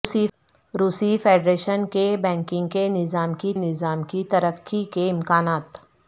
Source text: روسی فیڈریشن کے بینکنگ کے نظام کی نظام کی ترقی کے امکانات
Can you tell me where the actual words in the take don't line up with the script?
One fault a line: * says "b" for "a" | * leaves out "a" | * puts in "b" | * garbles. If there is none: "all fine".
all fine